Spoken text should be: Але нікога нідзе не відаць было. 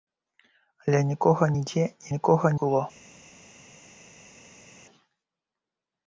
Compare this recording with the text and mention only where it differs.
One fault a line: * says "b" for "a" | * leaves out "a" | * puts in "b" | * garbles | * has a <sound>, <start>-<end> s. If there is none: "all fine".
* says "нікога" for "відаць"